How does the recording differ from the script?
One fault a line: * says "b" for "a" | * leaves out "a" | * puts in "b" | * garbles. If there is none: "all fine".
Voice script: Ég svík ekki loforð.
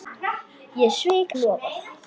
* leaves out "ekki"